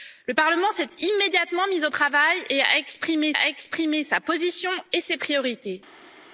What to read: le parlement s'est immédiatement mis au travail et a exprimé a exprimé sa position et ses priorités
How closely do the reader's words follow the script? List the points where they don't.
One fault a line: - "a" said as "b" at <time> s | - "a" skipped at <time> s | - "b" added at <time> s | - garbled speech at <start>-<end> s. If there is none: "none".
none